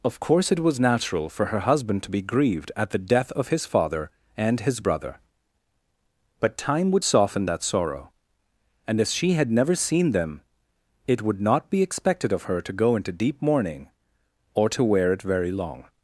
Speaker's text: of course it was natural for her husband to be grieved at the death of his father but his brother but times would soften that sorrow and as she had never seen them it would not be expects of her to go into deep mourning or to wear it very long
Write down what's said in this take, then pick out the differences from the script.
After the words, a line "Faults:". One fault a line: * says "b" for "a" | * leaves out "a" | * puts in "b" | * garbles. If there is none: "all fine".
of course it was natural for her husband to be grieved at the death of his father and his brother but time would soften that sorrow and as she had never seen them it would not be expected of her to go into deep mourning or to wear it very long
Faults:
* says "and" for "but"
* says "time" for "times"
* says "expected" for "expects"